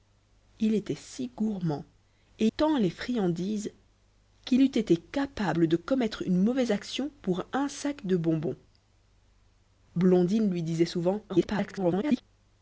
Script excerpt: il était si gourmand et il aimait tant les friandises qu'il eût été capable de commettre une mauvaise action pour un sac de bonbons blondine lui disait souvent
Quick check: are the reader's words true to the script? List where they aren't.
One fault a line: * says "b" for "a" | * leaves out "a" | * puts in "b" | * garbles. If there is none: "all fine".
* leaves out "il aimait"
* garbles